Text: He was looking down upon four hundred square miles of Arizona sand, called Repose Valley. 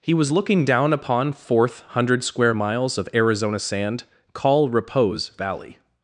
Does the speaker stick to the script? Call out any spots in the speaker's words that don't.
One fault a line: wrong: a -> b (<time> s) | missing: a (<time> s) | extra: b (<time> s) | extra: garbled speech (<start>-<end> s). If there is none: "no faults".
wrong: four -> fourth (1.3 s)
wrong: called -> call (4.3 s)